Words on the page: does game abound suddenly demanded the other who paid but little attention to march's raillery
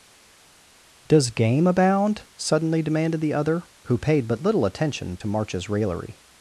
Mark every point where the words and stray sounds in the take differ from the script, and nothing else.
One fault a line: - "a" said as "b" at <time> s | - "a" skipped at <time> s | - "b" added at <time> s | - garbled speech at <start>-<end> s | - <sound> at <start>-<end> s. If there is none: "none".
none